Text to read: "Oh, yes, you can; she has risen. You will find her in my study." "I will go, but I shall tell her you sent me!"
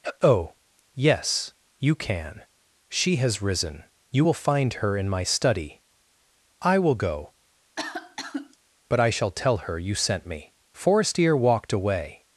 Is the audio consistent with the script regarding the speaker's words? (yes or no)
no